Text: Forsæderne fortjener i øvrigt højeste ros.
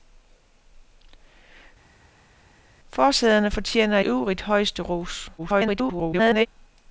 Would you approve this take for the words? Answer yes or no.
no